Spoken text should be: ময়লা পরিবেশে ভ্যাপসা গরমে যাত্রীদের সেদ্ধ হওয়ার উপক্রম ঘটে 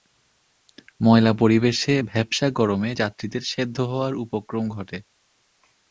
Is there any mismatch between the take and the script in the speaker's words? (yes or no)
no